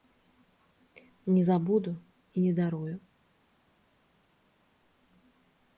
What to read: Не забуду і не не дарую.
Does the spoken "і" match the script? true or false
true